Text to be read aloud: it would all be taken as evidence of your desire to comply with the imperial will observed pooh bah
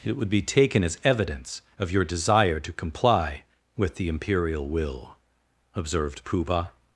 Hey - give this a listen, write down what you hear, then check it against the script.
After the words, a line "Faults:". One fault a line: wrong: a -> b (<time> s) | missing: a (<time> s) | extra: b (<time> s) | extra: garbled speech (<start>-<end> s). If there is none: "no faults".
it would be taken as evidence of your desire to comply with the imperial will observed pooh bah
Faults:
missing: all (0.3 s)